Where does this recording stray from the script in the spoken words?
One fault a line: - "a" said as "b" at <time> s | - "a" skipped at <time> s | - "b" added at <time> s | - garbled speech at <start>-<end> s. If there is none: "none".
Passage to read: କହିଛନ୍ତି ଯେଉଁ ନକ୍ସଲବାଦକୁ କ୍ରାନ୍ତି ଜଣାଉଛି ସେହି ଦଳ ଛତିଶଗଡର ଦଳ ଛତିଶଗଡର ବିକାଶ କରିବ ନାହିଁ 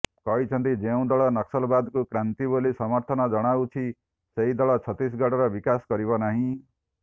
- "ଦଳ" added at 1.1 s
- "ବୋଲି ସମର୍ଥନ" added at 2.5 s
- "ଦଳ ଛତିଶଗଡର" skipped at 5.5 s